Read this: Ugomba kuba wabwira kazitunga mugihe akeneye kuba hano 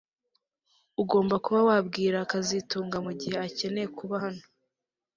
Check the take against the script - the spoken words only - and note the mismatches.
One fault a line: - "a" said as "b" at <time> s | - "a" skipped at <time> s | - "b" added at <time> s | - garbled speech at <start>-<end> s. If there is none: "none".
none